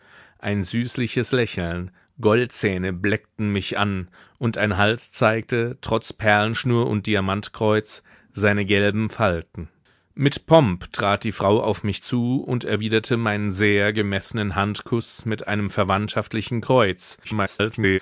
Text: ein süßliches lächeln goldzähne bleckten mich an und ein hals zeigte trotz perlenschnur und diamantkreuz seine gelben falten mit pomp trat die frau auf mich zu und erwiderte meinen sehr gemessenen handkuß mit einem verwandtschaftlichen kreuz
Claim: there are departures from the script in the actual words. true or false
true